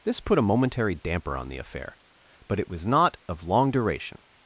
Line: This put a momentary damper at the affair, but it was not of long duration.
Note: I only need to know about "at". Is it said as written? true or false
false